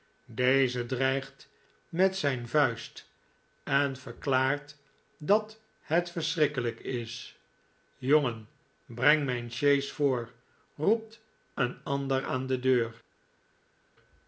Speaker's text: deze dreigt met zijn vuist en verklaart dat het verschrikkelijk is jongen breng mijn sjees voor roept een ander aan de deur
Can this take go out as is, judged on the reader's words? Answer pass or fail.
pass